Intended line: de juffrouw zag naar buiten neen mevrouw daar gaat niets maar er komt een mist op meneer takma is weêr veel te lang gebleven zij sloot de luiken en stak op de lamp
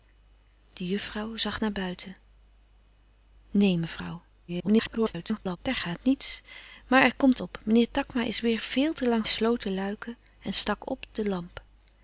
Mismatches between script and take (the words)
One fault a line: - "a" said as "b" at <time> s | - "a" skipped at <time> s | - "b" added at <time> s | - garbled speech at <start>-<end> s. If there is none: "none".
- garbled speech at 4.5-5.6 s
- "een mist" skipped at 7.4 s
- "gebleven zij" skipped at 9.3 s